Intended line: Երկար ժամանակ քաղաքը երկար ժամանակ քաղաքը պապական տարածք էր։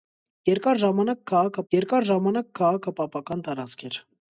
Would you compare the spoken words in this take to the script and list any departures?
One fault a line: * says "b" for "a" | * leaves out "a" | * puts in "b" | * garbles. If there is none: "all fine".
all fine